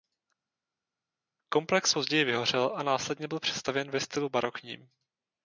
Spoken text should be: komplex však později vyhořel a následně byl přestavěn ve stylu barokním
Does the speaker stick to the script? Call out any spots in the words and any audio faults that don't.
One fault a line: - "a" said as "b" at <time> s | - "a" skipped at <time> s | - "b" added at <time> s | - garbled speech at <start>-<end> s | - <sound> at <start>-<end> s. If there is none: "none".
- "však" skipped at 1.9 s